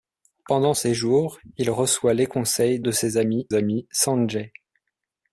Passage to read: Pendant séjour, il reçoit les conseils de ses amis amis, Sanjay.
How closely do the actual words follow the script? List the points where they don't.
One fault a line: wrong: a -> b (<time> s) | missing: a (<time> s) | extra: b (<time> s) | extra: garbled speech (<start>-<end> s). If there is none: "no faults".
no faults